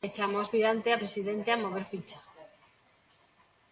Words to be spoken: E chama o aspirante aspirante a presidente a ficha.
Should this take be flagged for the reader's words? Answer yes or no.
yes